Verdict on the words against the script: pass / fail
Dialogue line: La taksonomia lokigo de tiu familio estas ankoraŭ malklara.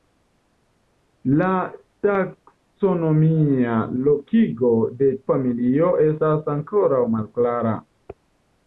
fail